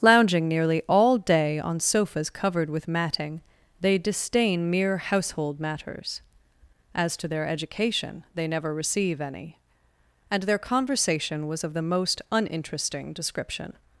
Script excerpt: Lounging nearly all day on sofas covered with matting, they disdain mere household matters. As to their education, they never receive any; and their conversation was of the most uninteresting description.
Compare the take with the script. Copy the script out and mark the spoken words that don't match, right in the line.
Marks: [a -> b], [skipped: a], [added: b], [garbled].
Lounging nearly all day on sofas covered with matting, they disdain mere household matters. As to their education, they never receive any; and their conversation was of the most uninteresting description.